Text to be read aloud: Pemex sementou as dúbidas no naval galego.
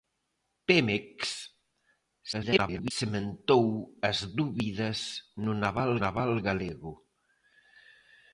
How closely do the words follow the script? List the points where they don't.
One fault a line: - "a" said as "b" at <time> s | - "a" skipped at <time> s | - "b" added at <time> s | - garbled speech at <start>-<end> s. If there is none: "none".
- garbled speech at 2.3-2.9 s
- "naval" added at 6.0 s